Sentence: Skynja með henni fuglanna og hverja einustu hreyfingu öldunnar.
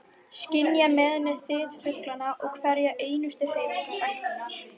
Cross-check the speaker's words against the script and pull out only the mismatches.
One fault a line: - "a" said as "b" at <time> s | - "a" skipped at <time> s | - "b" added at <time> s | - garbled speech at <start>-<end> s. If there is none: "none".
- "þyt" added at 1.4 s